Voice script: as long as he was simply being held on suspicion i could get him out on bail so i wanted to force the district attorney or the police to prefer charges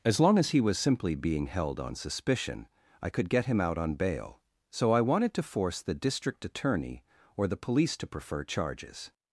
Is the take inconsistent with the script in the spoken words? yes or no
no